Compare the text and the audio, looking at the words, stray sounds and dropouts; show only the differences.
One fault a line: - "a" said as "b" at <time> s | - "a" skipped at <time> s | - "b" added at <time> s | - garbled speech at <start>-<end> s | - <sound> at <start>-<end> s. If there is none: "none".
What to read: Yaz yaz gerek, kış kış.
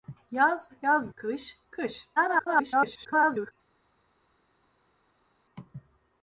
- "gerek" skipped at 1.1 s
- garbled speech at 2.2-3.5 s